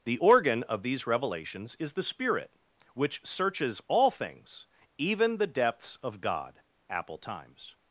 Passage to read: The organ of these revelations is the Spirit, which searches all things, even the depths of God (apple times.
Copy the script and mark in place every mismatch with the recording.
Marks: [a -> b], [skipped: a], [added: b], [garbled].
The organ of these revelations is the Spirit, which searches all things, even the depths of God (apple times.